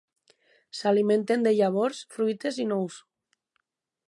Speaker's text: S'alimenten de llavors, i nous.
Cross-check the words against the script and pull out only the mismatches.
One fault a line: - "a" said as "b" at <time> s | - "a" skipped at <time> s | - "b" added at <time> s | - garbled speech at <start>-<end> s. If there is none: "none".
- "fruites" added at 2.2 s